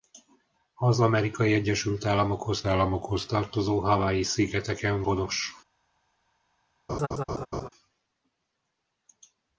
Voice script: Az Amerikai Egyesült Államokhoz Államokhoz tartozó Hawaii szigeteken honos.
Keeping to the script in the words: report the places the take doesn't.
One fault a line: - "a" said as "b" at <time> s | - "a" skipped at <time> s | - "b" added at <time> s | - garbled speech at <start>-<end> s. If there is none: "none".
none